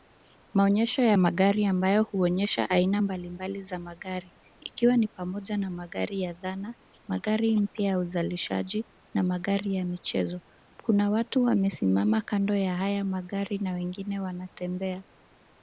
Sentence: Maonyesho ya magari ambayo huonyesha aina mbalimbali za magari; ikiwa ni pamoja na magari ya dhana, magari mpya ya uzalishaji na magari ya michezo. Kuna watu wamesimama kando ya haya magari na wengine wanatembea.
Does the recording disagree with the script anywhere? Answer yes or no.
no